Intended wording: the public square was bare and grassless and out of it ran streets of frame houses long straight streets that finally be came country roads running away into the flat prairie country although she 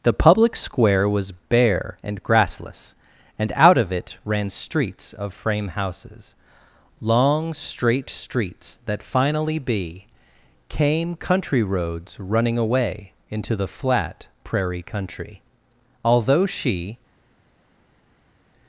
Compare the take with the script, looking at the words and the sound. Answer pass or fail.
pass